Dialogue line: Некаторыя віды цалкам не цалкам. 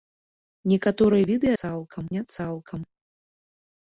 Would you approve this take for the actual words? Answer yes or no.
yes